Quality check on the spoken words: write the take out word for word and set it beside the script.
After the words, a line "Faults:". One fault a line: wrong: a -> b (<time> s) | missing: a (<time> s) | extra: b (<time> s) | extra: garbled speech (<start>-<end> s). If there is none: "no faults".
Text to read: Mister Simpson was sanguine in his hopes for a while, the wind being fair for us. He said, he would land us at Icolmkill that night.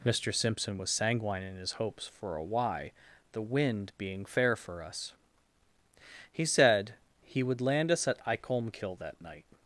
Mister Simpson was sanguine in his hopes for a why, the wind being fair for us. He said, he would land us at Icolmkill that night.
Faults:
wrong: while -> why (2.4 s)